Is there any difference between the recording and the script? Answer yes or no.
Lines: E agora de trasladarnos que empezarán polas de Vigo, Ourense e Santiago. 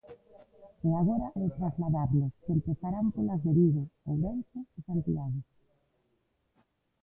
no